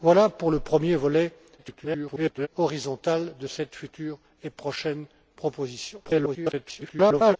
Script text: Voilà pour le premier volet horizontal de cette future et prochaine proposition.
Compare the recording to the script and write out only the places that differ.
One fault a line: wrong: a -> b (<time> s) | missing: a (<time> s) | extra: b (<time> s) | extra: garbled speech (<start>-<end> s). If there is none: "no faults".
extra: garbled speech (1.6-2.5 s)
extra: garbled speech (6.0-7.4 s)